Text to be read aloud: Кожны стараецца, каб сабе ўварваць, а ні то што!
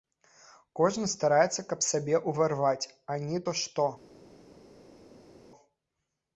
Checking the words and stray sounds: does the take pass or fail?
pass